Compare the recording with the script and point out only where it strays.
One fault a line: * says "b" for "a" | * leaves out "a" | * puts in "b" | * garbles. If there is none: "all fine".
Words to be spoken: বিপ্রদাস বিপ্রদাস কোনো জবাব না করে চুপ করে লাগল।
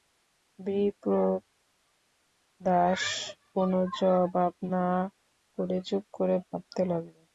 * leaves out "বিপ্রদাস"
* puts in "ভাবতে"